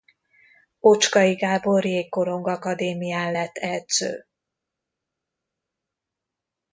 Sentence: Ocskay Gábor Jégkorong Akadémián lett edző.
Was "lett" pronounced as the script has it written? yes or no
yes